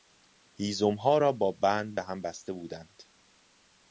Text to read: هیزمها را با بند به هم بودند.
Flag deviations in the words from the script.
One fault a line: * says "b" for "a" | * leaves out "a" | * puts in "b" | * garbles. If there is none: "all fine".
* puts in "بسته"